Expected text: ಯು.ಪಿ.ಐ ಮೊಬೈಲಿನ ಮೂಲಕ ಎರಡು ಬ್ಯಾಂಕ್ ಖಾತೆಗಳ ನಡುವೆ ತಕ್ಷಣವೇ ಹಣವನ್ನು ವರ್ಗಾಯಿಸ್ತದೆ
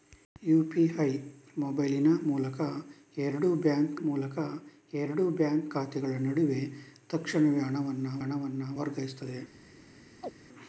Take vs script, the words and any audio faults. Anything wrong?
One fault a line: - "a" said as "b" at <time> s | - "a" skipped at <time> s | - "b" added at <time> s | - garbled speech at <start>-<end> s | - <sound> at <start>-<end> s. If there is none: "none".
- "ಮೂಲಕ ಎರಡು ಬ್ಯಾಂಕ್" added at 4.0 s
- "ಹಣವನ್ನು" added at 8.2 s
- chirp at 10.2-10.3 s